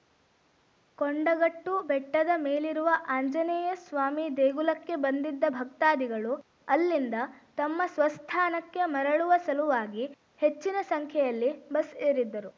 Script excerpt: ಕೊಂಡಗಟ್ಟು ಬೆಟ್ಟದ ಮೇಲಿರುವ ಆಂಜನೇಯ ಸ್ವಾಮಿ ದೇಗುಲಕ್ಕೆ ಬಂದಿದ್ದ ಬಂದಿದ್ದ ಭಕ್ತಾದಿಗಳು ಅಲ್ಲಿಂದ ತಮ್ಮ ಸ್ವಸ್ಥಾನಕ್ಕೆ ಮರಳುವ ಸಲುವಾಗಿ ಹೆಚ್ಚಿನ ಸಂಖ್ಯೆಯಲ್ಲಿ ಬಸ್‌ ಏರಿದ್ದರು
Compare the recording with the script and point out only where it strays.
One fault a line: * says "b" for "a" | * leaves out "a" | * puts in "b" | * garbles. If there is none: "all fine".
* leaves out "ಬಂದಿದ್ದ"